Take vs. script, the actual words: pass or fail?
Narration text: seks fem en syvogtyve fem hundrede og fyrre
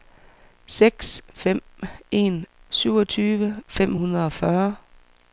pass